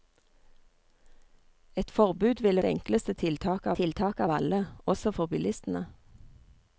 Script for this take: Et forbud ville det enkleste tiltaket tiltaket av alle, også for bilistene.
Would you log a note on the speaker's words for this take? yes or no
no